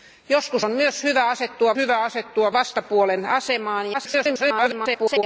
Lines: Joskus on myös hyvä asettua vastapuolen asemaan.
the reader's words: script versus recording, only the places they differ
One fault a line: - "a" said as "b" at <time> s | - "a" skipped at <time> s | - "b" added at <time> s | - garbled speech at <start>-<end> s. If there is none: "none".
- "hyvä asettua" added at 1.8 s
- garbled speech at 3.9-5.2 s